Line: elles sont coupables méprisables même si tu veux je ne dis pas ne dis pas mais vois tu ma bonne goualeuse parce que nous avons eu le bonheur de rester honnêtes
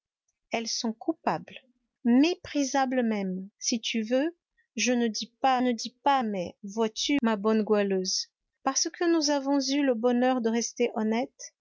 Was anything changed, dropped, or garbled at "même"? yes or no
no